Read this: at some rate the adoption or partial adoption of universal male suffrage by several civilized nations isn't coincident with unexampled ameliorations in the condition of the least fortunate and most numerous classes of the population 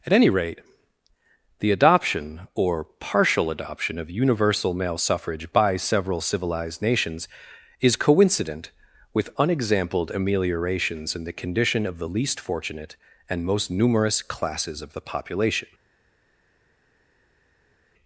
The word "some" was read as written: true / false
false